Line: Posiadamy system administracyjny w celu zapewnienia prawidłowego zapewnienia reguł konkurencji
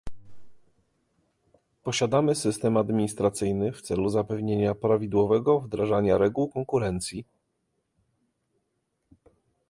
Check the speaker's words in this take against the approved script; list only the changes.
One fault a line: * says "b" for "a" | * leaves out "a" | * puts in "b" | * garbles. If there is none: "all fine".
* says "wdrażania" for "zapewnienia"